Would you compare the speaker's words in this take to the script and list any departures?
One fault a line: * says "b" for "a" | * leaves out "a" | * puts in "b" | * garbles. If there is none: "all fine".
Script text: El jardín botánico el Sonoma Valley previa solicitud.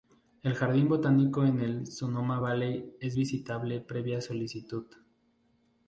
* puts in "en"
* puts in "es visitable"